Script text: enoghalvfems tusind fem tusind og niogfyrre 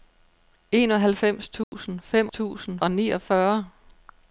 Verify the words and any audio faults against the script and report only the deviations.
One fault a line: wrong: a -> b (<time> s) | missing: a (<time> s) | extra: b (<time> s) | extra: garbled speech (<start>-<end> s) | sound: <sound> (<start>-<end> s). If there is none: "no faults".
sound: dropout (1.6-1.7 s)